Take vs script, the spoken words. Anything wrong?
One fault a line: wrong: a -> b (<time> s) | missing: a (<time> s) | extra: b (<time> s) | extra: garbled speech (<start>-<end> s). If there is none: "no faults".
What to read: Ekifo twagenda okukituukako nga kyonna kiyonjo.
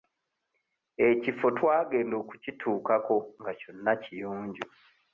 no faults